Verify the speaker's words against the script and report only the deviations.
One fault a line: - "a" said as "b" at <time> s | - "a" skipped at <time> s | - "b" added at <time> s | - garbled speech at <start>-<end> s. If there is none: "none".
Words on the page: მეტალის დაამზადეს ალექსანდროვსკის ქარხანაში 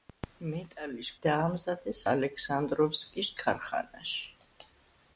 none